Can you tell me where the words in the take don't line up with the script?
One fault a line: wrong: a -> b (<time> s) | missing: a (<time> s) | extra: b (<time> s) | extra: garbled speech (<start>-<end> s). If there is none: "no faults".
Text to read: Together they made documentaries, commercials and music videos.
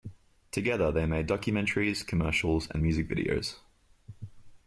no faults